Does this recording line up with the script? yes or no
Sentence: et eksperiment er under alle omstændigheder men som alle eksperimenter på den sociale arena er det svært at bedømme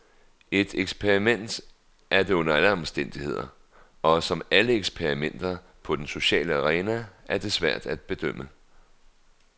no